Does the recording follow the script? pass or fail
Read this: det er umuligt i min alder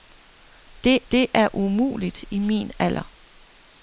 fail